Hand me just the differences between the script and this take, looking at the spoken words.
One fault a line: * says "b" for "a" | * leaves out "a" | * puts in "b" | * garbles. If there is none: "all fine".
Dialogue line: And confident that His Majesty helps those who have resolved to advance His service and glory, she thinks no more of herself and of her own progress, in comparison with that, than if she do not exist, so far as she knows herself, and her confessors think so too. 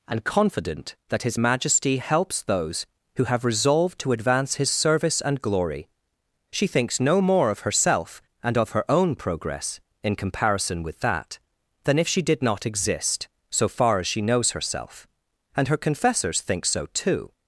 * says "did" for "do"